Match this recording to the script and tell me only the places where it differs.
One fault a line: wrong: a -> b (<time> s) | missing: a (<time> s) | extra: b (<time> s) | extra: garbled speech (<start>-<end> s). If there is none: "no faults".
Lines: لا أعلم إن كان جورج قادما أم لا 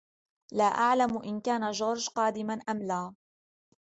no faults